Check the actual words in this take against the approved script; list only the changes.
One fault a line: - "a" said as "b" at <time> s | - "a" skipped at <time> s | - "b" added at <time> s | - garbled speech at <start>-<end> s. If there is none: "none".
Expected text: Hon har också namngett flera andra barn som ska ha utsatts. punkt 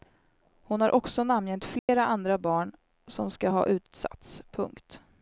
none